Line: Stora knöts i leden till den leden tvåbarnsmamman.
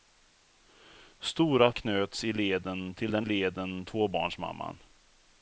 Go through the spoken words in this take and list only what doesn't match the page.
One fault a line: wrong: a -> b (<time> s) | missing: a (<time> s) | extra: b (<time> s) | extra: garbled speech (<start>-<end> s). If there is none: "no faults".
no faults